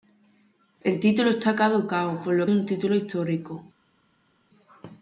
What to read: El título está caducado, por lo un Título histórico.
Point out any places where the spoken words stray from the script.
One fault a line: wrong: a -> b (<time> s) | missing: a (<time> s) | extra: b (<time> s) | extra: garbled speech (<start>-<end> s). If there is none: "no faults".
no faults